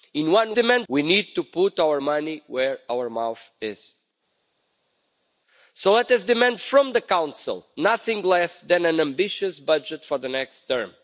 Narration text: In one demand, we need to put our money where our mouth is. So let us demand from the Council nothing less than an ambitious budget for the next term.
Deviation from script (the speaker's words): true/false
false